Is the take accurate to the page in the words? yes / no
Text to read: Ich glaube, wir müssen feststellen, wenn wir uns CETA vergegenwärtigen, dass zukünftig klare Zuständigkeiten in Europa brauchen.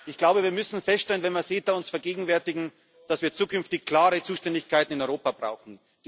no